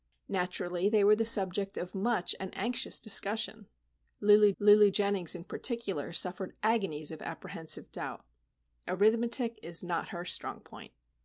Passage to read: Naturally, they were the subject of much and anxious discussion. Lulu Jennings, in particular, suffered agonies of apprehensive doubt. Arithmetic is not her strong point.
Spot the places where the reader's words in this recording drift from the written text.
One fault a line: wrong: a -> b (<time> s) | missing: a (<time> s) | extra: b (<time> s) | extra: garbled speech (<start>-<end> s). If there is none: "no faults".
extra: lulu (4.6 s)